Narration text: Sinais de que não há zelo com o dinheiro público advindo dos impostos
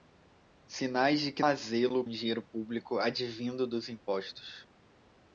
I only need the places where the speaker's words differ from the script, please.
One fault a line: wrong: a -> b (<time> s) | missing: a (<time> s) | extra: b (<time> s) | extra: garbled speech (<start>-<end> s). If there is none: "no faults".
missing: não (1.4 s)
missing: com (2.0 s)